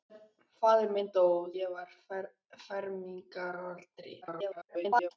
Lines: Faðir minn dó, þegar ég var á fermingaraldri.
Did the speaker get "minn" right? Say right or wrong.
right